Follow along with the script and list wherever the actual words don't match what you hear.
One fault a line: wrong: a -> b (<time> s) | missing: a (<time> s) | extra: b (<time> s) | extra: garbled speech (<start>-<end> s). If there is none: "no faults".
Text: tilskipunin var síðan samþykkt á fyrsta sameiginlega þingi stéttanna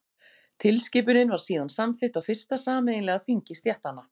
no faults